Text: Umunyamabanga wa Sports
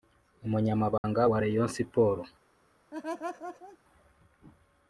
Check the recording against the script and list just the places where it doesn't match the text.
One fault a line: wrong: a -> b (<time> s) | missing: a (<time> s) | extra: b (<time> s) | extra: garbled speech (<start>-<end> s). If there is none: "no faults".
extra: Rayon (1.4 s)